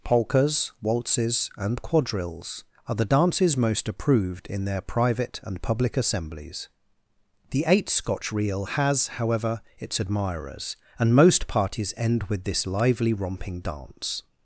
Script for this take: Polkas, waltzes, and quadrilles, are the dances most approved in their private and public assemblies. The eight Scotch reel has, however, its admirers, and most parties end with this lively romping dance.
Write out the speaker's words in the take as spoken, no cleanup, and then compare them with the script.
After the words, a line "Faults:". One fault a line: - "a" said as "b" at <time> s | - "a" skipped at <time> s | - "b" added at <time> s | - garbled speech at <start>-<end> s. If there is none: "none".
Polkas, waltzes, and quadrilles, are the dances most approved in their private and public assemblies. The eight Scotch reel has, however, its admirers, and most parties end with this lively romping dance.
Faults:
none